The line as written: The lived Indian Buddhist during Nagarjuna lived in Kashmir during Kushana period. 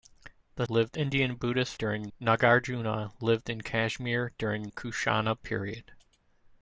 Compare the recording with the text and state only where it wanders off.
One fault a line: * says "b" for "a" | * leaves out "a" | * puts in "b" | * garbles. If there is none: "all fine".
all fine